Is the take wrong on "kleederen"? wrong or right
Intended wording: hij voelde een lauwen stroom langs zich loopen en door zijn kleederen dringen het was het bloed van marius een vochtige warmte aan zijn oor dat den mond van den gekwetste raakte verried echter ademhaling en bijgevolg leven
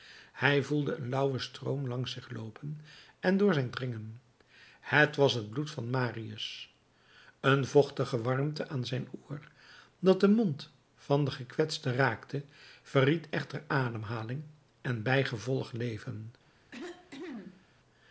wrong